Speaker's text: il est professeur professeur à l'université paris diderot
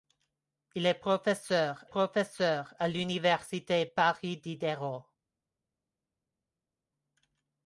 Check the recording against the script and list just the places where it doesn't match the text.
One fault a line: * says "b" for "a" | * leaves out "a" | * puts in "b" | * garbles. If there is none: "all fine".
all fine